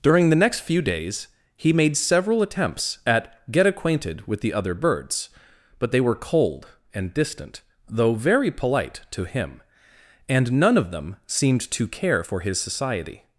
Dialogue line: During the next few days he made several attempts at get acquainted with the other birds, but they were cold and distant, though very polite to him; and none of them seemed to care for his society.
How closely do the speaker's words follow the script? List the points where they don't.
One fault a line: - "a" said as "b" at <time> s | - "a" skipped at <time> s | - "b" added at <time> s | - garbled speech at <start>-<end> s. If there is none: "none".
none